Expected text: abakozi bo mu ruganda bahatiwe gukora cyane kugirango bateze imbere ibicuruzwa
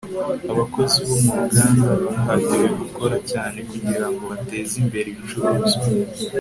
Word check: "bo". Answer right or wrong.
right